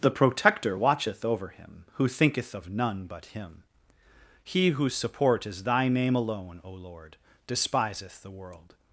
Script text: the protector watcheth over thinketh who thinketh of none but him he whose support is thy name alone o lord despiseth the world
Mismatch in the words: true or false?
true